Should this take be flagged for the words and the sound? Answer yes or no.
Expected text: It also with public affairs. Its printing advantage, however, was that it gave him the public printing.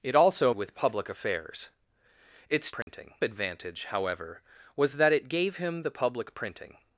yes